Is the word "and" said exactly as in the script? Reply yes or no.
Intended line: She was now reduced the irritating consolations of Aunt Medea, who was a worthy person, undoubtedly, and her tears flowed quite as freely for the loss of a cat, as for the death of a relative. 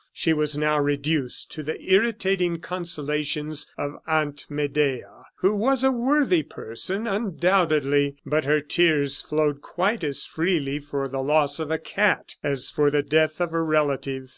no